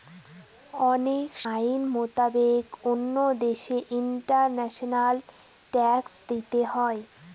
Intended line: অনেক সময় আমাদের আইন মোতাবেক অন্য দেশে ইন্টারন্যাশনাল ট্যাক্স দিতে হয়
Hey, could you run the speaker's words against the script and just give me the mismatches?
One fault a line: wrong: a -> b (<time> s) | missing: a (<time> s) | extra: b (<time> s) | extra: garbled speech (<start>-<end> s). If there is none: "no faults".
missing: সময় আমাদের (1.3 s)